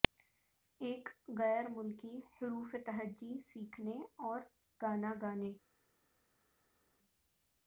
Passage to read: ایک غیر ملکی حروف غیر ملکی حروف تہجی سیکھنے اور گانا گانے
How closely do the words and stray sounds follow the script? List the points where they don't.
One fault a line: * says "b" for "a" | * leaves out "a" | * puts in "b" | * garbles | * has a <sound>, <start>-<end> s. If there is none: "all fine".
* leaves out "غیر ملکی حروف"